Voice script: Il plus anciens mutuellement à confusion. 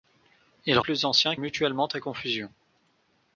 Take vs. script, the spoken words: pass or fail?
pass